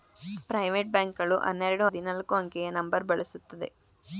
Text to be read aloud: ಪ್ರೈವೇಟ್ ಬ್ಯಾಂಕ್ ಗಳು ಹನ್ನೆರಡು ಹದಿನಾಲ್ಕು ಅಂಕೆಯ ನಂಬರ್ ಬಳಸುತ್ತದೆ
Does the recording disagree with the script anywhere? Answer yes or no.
no